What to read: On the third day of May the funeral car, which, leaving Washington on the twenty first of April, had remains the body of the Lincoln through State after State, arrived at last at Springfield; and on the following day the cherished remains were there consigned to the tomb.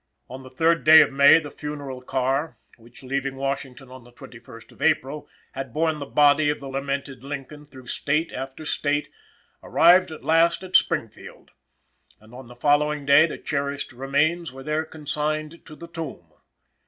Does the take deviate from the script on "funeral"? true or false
false